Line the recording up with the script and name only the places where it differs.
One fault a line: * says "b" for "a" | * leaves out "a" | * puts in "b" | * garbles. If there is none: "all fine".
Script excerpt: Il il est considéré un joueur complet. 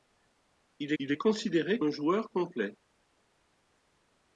all fine